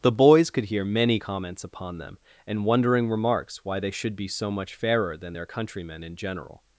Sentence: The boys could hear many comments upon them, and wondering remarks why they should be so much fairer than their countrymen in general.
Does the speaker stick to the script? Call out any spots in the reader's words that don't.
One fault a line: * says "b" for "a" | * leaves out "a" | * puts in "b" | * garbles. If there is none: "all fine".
all fine